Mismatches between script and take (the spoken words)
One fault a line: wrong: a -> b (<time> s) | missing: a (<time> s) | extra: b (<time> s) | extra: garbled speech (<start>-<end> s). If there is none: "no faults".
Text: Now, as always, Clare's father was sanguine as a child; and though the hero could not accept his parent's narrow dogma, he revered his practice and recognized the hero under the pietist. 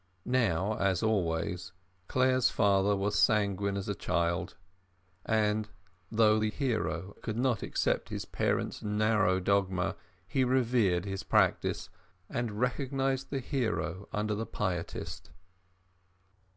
no faults